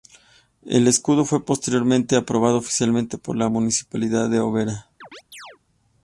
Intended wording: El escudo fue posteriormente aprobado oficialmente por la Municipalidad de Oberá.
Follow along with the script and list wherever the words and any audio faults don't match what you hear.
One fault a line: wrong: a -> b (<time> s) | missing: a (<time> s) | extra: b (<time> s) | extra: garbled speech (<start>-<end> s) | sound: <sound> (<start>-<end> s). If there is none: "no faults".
sound: chirp (5.0-5.6 s)